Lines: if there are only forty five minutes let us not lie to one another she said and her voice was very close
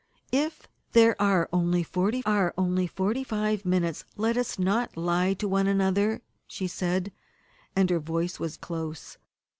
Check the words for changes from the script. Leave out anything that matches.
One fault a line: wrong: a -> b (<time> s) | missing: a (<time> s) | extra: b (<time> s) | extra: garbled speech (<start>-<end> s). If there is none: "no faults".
extra: are only forty (2.3 s)
missing: very (8.6 s)